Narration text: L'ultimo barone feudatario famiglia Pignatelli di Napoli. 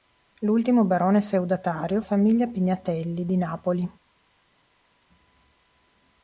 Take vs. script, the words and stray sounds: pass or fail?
pass